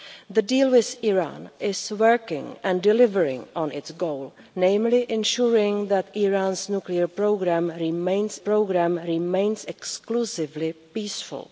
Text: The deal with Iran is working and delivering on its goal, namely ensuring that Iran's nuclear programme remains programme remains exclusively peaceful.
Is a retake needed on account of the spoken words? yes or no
no